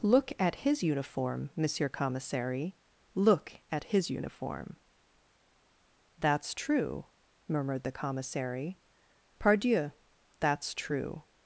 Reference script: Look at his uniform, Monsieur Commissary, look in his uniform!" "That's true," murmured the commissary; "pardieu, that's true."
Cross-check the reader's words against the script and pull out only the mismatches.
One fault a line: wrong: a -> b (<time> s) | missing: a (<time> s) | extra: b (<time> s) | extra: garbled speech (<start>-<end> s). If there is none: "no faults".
wrong: in -> at (3.7 s)